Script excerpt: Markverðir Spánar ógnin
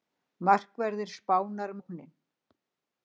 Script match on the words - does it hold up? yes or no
yes